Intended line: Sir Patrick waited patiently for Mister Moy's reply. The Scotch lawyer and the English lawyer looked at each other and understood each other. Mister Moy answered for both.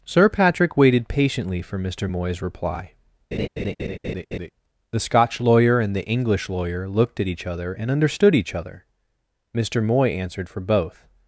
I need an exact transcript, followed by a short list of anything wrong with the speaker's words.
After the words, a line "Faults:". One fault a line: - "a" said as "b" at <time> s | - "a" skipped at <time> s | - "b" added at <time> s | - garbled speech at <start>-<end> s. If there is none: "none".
Sir Patrick waited patiently for Mister Moy's reply. The Scotch lawyer and the English lawyer looked at each other and understood each other. Mister Moy answered for both.
Faults:
none